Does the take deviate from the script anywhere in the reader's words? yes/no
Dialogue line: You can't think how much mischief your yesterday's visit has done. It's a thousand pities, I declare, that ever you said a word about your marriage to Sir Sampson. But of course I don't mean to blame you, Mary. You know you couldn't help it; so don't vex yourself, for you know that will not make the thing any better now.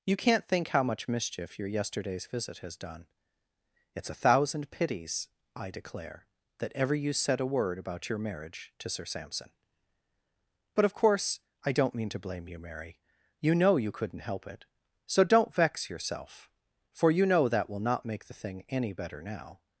no